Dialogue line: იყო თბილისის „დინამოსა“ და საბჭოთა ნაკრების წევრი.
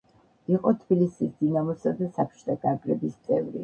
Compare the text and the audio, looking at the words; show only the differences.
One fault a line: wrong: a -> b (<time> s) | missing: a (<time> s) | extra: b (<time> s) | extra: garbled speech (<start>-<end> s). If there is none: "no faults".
no faults